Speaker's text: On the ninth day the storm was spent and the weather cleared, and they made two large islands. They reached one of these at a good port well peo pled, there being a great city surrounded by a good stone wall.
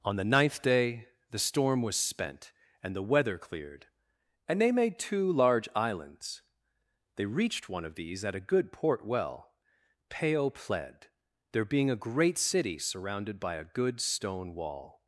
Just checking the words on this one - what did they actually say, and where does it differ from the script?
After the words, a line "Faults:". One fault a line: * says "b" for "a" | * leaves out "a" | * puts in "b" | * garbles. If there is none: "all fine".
On the ninth day the storm was spent and the weather cleared, and they made two large islands. They reached one of these at a good port well peo pled, there being a great city surrounded by a good stone wall.
Faults:
all fine